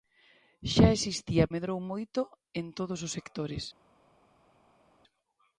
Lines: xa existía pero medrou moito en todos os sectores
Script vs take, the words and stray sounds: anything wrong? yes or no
yes